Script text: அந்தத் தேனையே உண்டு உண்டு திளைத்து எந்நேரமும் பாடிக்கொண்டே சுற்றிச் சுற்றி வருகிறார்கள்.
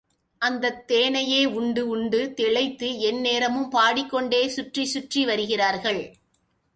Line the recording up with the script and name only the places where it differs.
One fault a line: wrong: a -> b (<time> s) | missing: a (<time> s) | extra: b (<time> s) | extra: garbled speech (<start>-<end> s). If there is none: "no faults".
no faults